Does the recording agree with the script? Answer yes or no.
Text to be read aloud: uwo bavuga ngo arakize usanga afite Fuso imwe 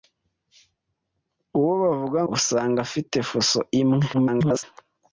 no